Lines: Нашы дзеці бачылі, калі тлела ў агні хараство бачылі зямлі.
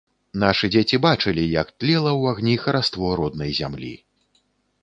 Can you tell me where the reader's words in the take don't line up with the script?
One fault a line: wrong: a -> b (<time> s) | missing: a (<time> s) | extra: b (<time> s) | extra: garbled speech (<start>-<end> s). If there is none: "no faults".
wrong: калі -> як (1.6 s)
wrong: бачылі -> роднай (3.2 s)